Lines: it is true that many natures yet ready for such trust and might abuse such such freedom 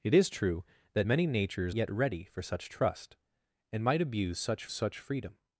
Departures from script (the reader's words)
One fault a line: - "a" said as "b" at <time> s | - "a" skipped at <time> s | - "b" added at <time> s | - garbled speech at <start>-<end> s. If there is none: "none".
none